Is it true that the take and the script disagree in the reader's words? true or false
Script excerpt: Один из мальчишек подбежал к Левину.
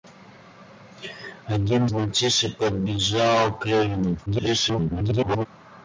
true